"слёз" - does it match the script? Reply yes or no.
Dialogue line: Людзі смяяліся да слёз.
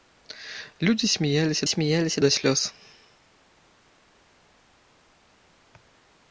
yes